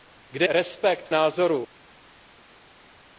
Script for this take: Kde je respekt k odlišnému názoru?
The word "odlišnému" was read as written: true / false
false